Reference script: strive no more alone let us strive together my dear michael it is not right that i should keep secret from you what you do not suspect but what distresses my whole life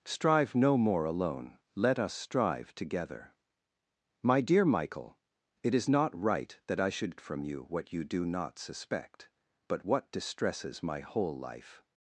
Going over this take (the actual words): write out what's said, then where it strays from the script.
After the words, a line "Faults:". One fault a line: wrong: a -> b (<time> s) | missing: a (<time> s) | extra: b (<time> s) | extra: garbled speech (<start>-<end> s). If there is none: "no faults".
strive no more alone let us strive together my dear michael it is not right that i should from you what you do not suspect but what distresses my whole life
Faults:
missing: keep secret (7.2 s)